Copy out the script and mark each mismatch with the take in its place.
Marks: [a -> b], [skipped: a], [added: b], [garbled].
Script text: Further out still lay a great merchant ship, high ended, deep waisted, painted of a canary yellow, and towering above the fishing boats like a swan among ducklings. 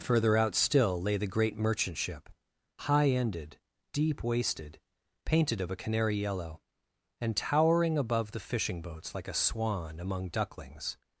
Further out still lay [a -> the] great merchant ship, high ended, deep waisted, painted of a canary yellow, and towering above the fishing boats like a swan among ducklings.